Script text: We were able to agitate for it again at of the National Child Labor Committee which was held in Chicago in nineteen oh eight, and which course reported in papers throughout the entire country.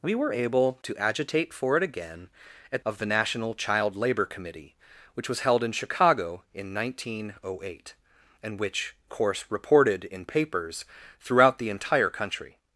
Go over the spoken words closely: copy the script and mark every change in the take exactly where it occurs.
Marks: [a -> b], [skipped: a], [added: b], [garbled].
We were able to agitate for it again at of the National Child Labor Committee which was held in Chicago in nineteen oh eight, and which course reported in papers throughout the entire country.